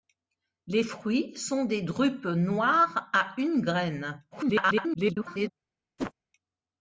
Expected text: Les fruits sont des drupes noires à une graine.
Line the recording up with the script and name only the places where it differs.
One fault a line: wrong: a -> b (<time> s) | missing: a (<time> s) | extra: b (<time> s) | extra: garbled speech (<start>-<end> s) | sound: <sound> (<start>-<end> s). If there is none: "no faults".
extra: garbled speech (4.3-5.5 s)
sound: whoosh (6.0-6.1 s)